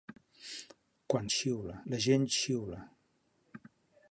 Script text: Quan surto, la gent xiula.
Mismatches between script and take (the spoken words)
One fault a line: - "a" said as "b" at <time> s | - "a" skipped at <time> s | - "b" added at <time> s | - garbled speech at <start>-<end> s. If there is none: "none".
- "surto" said as "xiula" at 1.3 s